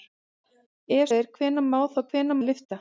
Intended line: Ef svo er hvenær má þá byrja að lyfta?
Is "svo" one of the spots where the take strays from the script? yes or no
yes